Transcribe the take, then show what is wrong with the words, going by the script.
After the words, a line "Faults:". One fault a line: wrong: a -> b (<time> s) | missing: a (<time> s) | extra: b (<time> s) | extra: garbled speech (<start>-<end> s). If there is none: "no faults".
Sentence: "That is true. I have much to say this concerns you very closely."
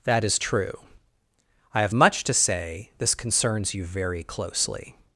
"That is true. I have much to say this concerns you very closely."
Faults:
no faults